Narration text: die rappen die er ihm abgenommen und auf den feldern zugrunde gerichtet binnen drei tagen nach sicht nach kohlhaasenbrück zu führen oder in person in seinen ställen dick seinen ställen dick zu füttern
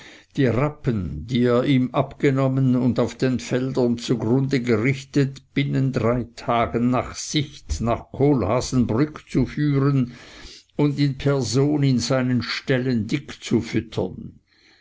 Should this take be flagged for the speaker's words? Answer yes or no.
yes